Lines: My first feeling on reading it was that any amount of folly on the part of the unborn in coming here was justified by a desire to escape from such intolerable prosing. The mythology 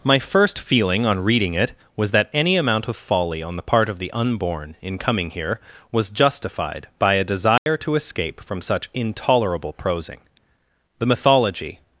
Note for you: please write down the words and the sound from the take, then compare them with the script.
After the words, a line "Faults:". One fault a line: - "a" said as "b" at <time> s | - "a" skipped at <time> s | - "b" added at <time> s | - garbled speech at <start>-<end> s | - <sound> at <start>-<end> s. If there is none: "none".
My first feeling on reading it was that any amount of folly on the part of the unborn in coming here was justified by a desire to escape from such intolerable prosing. The mythology
Faults:
- dropout at 7.6-7.7 s